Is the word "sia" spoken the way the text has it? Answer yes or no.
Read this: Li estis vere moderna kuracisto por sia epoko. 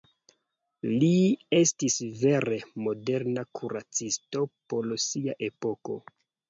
yes